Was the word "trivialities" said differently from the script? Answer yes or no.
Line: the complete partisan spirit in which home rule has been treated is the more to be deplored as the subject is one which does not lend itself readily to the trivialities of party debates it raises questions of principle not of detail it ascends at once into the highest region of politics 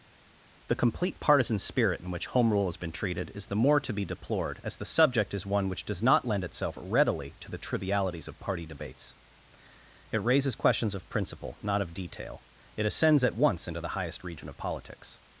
no